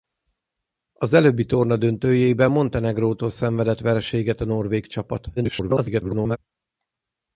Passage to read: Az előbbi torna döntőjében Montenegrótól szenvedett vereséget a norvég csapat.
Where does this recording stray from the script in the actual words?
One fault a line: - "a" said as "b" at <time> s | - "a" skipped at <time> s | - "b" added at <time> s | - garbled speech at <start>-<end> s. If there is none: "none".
- garbled speech at 5.4-6.4 s